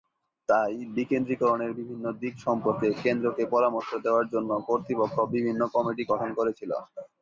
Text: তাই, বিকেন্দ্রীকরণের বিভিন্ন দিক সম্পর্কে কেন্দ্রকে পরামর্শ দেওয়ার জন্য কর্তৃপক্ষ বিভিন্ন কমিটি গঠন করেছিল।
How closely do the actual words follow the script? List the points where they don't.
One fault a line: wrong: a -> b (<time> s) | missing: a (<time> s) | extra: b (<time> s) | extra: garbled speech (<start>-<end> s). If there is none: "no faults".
no faults